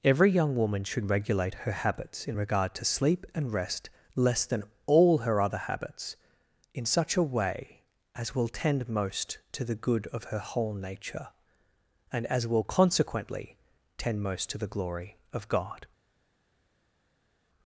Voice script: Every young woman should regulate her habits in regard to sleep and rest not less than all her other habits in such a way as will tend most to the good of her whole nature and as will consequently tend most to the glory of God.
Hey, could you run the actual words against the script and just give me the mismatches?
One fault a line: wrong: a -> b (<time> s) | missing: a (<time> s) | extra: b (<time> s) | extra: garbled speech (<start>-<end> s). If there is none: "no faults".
missing: not (3.9 s)